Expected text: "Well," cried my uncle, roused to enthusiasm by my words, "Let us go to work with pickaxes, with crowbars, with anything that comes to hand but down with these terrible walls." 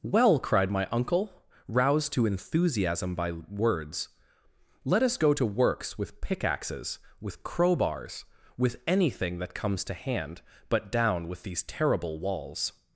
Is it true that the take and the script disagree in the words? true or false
true